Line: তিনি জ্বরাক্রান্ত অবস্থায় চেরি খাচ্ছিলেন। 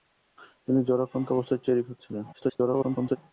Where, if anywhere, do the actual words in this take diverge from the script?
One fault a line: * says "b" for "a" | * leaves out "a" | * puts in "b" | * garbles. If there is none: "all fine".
* garbles